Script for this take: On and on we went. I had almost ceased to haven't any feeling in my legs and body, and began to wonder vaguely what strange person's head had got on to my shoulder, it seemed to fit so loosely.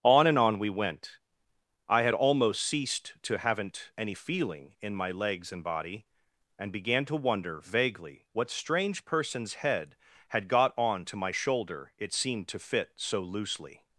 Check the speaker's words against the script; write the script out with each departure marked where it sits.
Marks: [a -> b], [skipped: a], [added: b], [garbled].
On and on we went. I had almost ceased to haven't any feeling in my legs and body, and began to wonder vaguely what strange person's head had got on to my shoulder, it seemed to fit so loosely.